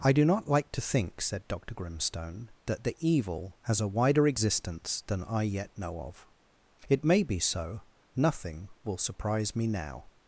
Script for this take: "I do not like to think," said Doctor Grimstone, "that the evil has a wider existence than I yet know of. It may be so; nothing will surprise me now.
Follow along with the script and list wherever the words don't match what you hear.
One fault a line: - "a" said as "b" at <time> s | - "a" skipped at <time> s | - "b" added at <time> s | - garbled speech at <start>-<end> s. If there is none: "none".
none